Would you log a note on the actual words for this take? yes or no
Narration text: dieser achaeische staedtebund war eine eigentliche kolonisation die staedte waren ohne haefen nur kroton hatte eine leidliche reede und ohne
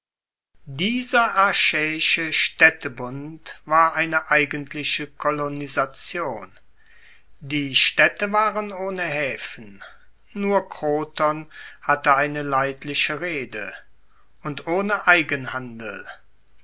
no